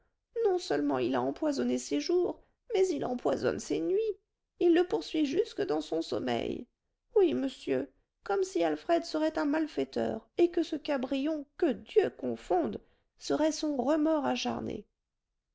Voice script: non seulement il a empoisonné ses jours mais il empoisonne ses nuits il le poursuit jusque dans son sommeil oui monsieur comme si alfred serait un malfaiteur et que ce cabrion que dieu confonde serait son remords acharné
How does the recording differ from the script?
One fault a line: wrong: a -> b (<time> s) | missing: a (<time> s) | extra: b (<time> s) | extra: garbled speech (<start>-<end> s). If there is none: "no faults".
no faults